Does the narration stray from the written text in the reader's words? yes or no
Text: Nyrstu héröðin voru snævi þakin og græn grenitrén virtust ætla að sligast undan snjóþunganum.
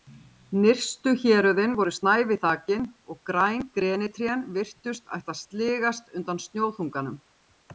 no